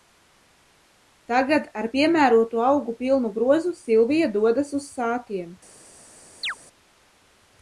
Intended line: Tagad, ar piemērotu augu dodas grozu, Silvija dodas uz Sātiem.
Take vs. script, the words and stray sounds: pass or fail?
fail